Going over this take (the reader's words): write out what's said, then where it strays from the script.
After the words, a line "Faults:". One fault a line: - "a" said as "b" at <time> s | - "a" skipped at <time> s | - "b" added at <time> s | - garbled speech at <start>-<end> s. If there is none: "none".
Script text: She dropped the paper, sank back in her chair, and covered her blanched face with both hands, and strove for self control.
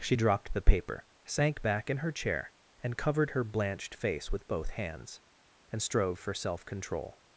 She dropped the paper, sank back in her chair, and covered her blanched face with both hands, and strove for self control.
Faults:
none